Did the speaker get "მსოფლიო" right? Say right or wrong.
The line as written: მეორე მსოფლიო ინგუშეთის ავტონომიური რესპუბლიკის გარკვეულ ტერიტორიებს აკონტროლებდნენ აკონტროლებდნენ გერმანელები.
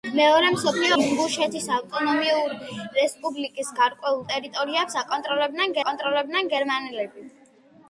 right